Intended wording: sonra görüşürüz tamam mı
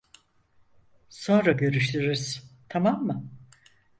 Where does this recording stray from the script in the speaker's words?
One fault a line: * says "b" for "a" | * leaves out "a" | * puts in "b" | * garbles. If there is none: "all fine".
all fine